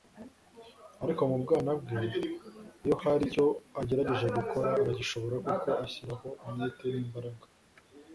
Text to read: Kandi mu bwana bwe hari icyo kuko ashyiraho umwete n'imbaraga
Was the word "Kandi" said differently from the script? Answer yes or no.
yes